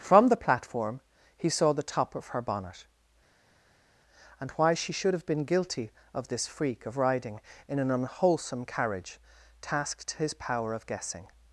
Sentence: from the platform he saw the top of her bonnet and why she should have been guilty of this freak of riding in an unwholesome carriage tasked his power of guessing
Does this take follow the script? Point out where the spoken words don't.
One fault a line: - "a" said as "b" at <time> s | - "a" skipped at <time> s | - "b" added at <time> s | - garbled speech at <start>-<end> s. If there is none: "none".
none